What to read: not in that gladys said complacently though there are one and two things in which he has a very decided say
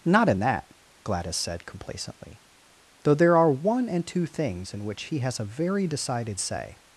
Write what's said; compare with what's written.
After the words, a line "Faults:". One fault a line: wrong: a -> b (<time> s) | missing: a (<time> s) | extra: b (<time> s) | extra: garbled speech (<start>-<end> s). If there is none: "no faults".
not in that gladys said complacently though there are one and two things in which he has a very decided say
Faults:
no faults